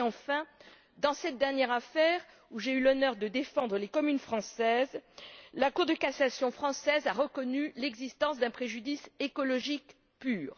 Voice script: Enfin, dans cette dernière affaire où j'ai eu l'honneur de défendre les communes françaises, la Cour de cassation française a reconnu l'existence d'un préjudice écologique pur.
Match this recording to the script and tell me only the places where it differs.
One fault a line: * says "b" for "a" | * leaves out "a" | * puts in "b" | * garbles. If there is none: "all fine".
all fine